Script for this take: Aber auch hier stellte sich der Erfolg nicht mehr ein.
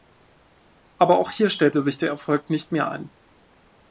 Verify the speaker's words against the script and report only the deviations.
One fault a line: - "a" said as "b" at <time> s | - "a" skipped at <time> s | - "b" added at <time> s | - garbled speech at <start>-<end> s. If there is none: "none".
none